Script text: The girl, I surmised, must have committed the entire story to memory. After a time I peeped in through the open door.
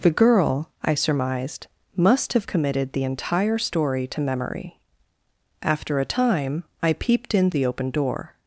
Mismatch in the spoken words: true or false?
true